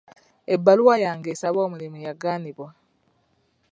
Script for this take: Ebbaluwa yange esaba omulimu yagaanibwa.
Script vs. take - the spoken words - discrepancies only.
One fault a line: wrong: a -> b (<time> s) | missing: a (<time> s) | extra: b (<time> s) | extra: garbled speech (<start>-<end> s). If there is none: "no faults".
no faults